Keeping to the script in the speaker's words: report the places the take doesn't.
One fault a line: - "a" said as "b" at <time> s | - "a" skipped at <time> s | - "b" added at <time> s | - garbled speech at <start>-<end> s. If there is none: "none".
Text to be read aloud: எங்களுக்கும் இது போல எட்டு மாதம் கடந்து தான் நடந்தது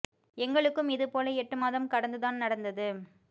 none